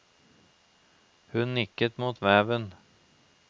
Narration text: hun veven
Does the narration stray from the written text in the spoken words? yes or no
yes